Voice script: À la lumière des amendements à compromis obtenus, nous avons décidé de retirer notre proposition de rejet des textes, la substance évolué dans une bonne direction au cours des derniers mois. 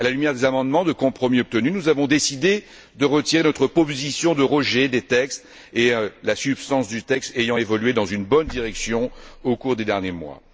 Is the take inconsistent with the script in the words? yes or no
yes